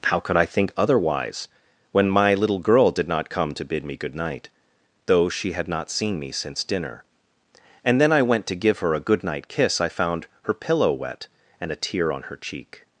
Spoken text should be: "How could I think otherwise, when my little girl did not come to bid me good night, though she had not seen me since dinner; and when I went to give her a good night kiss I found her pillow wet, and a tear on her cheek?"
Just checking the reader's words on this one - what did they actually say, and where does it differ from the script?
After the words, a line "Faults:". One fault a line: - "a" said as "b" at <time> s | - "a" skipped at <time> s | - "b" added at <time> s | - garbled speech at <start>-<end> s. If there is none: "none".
"How could I think otherwise, when my little girl did not come to bid me good night, though she had not seen me since dinner; and then I went to give her a good night kiss I found her pillow wet, and a tear on her cheek?"
Faults:
- "when" said as "then" at 8.0 s